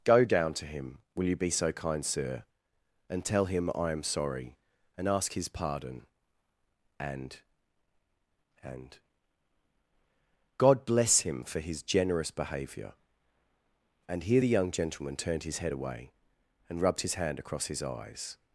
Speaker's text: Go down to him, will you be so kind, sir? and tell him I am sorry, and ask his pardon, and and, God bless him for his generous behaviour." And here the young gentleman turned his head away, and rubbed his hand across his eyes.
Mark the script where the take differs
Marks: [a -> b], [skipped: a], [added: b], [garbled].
Go down to him, will you be so kind, sir? and tell him I am sorry, and ask his pardon, and and, God bless him for his generous behaviour." And here the young gentleman turned his head away, and rubbed his hand across his eyes.